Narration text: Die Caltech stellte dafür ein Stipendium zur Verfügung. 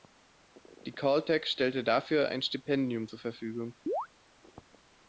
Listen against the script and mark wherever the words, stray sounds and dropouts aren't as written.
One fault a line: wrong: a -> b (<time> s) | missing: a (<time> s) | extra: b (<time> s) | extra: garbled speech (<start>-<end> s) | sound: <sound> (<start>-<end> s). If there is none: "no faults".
sound: chirp (3.9-4.1 s)